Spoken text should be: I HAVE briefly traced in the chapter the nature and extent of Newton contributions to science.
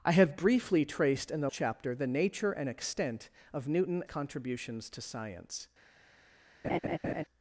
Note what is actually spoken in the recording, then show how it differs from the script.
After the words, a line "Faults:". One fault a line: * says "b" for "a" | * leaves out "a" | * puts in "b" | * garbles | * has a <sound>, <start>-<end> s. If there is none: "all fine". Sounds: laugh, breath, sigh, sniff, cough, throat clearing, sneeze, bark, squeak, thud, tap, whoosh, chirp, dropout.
I HAVE briefly traced in the chapter the nature and extent of Newton contributions to science.
Faults:
* has a laugh, 6.6-7.2 s